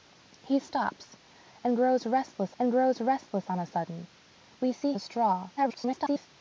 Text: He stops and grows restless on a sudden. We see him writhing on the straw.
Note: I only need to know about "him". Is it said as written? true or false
false